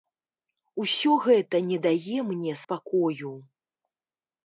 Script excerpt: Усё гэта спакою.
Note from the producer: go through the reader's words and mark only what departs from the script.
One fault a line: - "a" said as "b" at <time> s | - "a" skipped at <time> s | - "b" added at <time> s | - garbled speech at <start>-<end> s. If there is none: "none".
- "не дае мне" added at 1.7 s